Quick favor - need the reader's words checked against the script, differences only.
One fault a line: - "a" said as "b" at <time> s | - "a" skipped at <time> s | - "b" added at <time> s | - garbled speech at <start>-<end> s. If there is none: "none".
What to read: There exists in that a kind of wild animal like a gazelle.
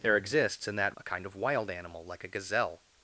none